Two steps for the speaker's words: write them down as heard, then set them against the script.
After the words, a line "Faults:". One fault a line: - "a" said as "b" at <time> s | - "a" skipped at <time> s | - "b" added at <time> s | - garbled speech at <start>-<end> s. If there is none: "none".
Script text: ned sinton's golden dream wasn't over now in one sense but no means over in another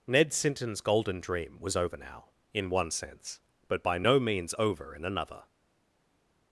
ned sinton's golden dream was over now in one sense but by no means over in another
Faults:
- "wasn't" said as "was" at 1.6 s
- "by" added at 3.8 s